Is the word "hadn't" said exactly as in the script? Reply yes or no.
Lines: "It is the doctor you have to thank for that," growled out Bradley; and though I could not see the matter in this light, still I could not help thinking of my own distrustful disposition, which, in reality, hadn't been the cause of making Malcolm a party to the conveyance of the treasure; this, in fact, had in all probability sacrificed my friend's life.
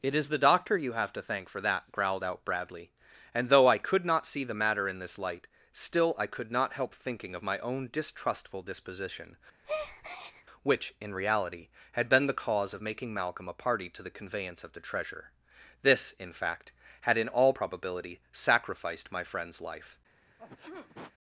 no